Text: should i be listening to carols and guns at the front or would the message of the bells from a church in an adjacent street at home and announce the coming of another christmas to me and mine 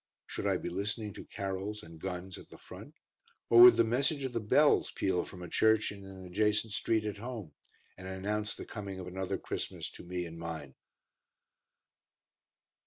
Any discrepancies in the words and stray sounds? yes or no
yes